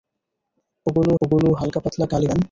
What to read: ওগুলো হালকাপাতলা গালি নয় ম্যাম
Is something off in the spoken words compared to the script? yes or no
yes